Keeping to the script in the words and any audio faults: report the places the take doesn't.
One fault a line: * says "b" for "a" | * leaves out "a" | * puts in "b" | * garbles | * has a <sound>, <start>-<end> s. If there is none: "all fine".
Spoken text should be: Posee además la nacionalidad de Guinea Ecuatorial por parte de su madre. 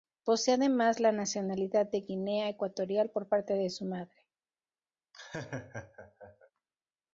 * has a laugh, 5.1-6.5 s